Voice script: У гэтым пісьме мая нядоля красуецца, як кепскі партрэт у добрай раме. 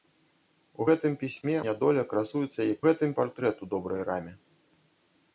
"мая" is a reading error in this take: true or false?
true